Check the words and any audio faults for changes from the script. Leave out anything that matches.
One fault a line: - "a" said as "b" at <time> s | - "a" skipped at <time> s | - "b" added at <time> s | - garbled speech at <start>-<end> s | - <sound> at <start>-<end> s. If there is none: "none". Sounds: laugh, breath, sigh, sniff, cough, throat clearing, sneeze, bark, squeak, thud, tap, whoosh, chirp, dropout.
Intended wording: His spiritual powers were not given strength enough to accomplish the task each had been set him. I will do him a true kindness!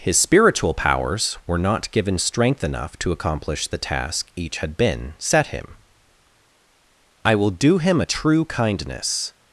none